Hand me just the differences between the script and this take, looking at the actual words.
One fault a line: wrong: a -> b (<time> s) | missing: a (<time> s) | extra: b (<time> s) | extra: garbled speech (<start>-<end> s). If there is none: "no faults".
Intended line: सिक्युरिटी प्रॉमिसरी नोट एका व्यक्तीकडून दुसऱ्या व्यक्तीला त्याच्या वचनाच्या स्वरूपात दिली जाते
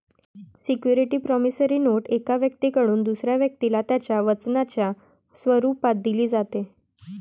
no faults